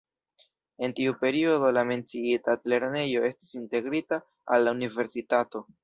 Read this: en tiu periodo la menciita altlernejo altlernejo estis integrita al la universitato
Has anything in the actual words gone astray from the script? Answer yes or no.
yes